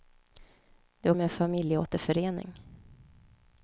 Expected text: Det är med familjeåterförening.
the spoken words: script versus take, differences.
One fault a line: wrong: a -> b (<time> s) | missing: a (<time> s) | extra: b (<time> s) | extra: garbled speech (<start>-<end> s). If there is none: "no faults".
no faults